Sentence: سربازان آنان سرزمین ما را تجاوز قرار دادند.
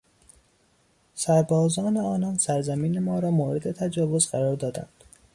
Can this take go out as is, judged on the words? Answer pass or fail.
fail